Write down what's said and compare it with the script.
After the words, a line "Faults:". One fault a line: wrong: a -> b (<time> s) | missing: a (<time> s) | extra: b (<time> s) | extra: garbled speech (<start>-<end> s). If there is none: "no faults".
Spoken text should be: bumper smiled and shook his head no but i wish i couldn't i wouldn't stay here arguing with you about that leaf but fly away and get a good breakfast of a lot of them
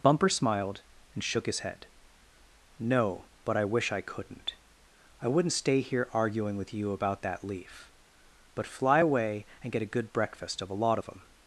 bumper smiled and shook his head no but i wish i couldn't i wouldn't stay here arguing with you about that leaf but fly away and get a good breakfast of a lot of them
Faults:
no faults